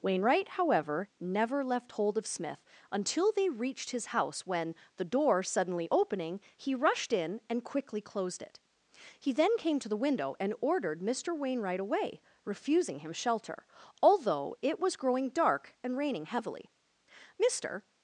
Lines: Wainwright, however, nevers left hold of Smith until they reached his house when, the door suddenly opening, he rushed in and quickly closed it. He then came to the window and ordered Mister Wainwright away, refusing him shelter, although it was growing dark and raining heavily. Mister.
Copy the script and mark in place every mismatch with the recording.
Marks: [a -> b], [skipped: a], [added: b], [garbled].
Wainwright, however, [nevers -> never] left hold of Smith until they reached his house when, the door suddenly opening, he rushed in and quickly closed it. He then came to the window and ordered Mister Wainwright away, refusing him shelter, although it was growing dark and raining heavily. Mister.